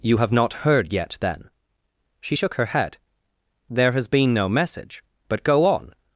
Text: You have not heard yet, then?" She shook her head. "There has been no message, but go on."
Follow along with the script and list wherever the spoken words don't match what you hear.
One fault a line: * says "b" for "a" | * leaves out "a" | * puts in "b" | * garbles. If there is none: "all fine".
all fine